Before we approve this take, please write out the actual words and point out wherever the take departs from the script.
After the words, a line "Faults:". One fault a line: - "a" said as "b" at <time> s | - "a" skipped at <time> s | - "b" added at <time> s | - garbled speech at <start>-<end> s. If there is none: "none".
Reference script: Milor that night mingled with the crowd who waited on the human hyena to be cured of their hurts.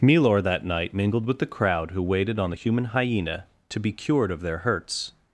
Milor that night mingled with the crowd who waited on the human hyena to be cured of their hurts.
Faults:
none